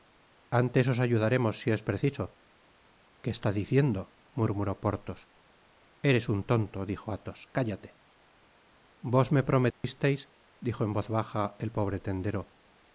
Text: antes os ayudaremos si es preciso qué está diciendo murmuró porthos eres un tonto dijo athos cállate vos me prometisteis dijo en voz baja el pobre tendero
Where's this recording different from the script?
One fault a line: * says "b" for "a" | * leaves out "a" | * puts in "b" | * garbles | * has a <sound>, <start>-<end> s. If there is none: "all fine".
* has a dropout, 9.7-9.8 s